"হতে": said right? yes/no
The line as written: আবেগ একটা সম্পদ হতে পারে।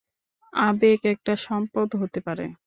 yes